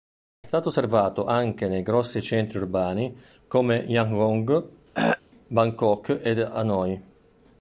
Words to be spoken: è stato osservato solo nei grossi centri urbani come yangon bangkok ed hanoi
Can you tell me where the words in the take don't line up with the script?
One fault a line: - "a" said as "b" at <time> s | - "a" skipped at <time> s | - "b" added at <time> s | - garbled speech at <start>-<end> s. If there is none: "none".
- "solo" said as "anche" at 1.2 s